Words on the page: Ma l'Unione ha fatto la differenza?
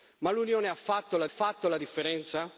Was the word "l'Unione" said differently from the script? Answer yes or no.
no